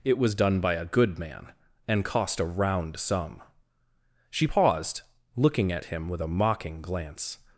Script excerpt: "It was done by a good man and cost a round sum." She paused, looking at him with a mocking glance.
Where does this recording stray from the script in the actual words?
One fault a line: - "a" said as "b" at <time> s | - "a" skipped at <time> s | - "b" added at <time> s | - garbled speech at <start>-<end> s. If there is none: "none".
none